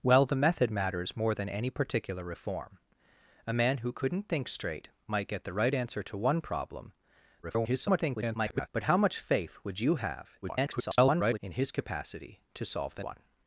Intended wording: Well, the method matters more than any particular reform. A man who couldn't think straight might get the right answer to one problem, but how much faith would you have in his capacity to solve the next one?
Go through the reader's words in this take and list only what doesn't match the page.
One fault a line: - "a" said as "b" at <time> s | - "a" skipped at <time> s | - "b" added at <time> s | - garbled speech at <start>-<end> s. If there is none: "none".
- garbled speech at 7.4-8.7 s
- garbled speech at 10.4-11.4 s
- "next" skipped at 13.0 s